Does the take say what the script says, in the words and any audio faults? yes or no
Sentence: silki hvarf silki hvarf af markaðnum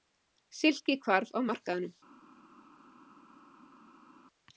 no